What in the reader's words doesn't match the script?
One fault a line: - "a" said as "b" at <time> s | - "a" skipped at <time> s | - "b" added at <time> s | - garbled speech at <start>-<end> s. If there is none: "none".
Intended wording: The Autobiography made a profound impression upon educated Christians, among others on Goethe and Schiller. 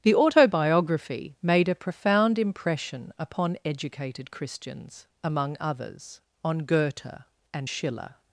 none